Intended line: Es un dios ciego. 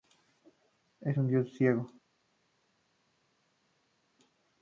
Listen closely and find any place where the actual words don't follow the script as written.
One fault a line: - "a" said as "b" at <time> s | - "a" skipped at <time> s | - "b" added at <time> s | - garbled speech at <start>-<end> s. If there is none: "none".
none